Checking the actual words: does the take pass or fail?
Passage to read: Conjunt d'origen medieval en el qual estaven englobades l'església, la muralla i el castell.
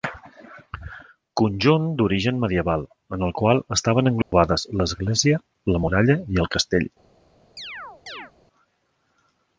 pass